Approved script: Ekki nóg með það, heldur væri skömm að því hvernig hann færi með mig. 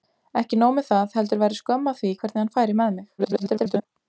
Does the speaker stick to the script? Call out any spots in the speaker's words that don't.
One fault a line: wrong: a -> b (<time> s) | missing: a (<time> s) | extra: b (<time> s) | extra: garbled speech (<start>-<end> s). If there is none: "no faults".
extra: garbled speech (3.2-3.9 s)